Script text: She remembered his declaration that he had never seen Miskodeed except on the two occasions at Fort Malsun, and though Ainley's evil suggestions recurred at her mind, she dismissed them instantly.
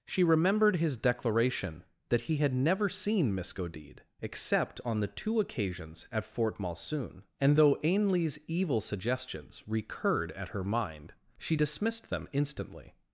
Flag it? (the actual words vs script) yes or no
no